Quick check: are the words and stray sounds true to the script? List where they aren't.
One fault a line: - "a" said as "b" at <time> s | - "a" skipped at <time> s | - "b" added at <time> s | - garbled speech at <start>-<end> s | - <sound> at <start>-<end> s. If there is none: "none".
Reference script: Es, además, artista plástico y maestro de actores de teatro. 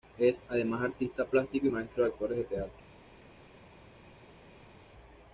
none